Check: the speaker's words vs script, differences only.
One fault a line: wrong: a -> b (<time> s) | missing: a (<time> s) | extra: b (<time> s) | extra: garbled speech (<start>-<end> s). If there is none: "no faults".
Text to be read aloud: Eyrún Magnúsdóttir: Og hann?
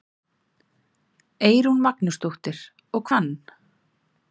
no faults